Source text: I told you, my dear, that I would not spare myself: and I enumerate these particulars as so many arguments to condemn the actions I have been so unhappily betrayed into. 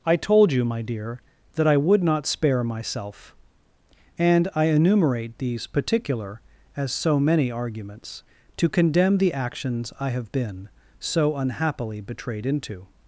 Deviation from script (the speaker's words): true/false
true